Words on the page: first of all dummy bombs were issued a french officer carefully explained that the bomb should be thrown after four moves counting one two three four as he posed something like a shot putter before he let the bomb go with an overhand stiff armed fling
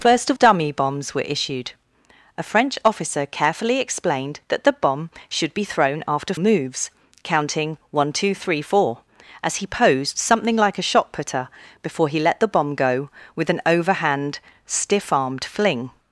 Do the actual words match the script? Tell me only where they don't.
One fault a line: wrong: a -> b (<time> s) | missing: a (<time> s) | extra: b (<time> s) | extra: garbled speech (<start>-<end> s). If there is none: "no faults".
missing: all (0.4 s)
missing: four (6.3 s)